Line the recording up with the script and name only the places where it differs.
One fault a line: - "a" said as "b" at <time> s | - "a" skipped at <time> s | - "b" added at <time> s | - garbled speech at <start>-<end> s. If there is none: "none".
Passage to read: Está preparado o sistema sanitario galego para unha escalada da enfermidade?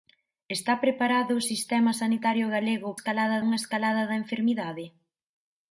- "para" said as "escalada" at 3.0 s